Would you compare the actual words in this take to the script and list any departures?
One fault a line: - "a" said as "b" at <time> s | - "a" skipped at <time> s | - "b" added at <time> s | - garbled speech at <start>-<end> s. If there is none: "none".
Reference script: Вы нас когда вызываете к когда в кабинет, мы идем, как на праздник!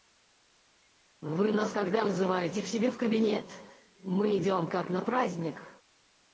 - "когда" said as "себе" at 2.7 s